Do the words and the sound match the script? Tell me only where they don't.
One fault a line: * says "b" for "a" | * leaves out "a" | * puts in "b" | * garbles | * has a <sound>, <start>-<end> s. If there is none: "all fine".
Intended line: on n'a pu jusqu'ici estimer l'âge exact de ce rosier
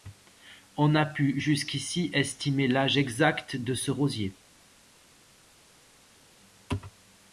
all fine